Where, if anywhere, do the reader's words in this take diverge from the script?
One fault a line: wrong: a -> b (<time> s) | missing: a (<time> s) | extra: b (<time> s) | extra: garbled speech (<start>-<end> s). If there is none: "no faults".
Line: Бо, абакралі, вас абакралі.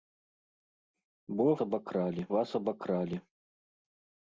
no faults